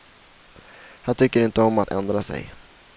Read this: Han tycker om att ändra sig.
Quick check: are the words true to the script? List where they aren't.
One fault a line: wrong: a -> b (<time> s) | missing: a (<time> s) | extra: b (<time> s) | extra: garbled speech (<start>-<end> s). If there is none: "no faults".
extra: inte (1.4 s)